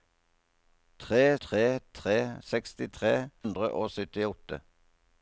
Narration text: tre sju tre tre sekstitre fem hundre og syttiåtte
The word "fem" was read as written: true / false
false